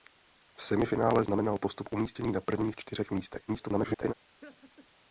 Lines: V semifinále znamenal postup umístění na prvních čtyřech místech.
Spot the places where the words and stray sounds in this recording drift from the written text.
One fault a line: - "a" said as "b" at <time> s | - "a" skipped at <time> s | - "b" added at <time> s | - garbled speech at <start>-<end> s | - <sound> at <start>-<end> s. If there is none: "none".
- garbled speech at 3.5-4.1 s
- laugh at 4.4-4.9 s